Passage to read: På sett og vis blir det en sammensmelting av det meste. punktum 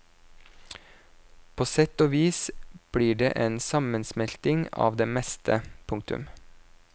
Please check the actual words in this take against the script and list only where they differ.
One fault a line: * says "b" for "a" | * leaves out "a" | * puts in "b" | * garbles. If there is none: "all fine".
all fine